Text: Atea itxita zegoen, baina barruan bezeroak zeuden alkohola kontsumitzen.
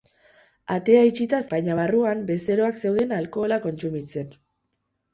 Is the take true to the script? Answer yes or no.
no